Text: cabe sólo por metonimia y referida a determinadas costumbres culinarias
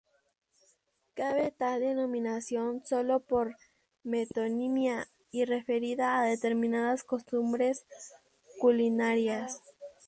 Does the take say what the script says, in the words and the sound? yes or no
no